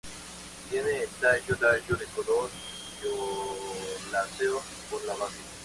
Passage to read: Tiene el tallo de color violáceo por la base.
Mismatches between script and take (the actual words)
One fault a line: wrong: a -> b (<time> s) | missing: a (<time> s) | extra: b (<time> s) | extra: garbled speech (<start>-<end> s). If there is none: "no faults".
extra: tallo (1.6 s)